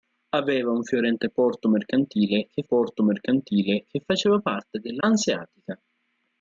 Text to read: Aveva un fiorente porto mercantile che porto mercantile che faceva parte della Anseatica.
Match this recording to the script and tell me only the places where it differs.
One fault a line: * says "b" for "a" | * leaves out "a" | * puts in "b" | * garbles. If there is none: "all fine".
all fine